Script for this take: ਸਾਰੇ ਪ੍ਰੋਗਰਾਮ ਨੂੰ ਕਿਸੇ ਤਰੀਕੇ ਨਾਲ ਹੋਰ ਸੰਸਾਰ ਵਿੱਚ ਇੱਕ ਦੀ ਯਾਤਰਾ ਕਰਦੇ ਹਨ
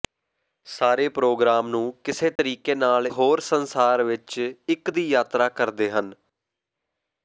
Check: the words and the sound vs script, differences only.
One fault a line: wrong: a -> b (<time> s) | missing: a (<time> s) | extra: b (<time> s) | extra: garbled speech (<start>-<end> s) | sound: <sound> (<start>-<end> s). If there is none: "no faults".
sound: dropout (2.4-2.4 s)